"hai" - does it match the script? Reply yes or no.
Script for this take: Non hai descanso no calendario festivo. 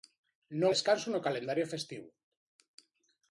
no